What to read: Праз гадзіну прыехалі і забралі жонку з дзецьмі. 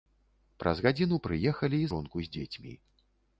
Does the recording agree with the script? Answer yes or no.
no